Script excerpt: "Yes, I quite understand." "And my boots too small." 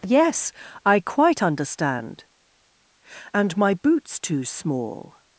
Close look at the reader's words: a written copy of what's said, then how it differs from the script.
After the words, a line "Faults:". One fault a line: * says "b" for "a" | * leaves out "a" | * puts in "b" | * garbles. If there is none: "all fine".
"Yes, I quite understand." "And my boots too small."
Faults:
all fine